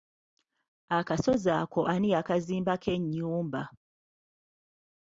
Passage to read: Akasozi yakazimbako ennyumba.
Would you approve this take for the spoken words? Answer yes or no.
no